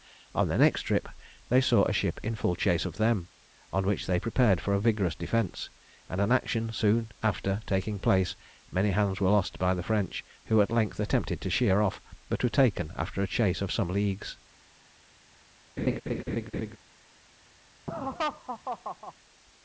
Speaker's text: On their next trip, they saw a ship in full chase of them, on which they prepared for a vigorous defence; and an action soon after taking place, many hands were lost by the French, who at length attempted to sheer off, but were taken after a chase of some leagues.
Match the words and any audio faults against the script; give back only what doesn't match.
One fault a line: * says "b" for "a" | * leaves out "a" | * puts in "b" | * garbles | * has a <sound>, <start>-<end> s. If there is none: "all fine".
* has a laugh, 15.8-16.8 s
* has a laugh, 17.9-19.1 s